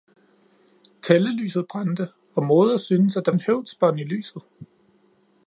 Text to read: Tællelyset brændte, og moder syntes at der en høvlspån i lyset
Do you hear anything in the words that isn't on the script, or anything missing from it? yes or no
no